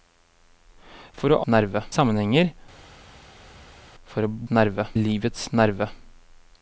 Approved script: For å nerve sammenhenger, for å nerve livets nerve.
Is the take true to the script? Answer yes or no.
yes